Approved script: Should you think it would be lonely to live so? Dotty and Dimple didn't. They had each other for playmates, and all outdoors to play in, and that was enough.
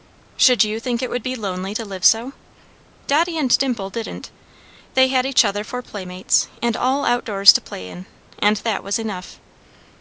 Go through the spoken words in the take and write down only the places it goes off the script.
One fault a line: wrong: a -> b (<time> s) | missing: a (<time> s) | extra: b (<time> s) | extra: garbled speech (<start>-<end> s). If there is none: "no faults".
no faults